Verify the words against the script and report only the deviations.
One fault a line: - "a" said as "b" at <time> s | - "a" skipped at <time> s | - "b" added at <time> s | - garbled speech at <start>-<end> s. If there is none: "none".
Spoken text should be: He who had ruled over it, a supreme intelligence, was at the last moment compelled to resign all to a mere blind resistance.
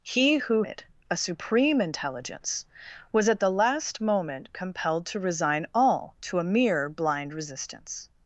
- "had ruled over" skipped at 0.6 s